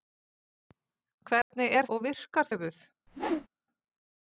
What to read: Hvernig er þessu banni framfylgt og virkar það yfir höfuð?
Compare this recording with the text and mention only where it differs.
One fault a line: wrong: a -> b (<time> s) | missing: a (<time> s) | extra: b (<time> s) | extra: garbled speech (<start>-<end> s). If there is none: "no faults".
missing: þessu banni framfylgt (1.9 s)
missing: það yfir (2.5 s)